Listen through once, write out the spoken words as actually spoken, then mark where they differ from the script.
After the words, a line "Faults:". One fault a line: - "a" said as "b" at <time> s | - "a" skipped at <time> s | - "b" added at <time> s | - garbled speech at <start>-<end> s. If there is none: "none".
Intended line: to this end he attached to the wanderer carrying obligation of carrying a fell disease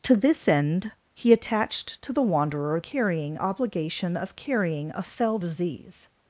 to this end he attached to the wanderer carrying obligation of carrying a fell disease
Faults:
none